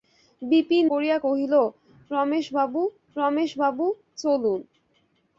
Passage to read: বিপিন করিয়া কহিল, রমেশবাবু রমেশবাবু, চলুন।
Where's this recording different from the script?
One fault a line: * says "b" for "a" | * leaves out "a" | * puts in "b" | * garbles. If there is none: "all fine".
all fine